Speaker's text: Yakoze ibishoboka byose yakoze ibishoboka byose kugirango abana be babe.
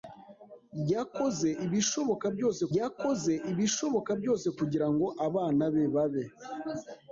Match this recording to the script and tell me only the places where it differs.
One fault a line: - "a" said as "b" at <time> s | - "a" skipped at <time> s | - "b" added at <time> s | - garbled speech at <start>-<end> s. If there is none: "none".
none